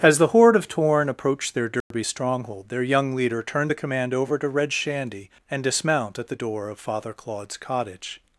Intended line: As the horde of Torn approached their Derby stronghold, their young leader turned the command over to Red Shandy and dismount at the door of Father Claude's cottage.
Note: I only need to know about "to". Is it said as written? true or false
true